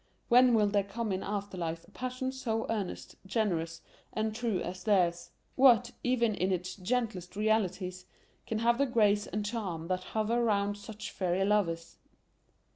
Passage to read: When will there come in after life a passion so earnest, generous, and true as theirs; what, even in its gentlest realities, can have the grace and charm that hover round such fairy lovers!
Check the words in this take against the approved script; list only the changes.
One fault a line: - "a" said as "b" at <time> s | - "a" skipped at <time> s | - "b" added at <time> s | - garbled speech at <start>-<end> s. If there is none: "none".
none